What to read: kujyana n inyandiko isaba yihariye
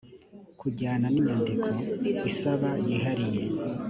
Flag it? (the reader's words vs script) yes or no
no